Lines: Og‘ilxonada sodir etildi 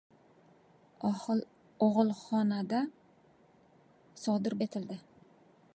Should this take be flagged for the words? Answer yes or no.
no